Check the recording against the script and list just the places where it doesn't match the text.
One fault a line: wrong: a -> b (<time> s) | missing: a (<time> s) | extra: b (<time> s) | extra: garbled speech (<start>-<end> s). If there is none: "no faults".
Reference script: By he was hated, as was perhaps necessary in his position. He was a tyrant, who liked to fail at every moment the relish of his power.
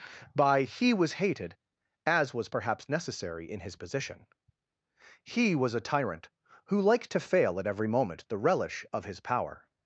no faults